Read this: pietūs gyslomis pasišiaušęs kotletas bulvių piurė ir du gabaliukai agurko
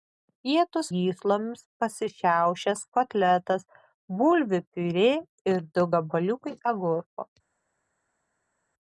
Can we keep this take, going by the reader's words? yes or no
yes